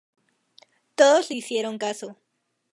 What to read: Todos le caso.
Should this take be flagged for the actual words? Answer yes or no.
yes